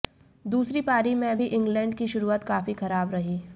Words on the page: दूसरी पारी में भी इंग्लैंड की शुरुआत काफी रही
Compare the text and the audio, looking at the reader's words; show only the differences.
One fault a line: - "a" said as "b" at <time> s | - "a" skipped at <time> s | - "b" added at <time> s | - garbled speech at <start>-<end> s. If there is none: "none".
- "खराब" added at 2.7 s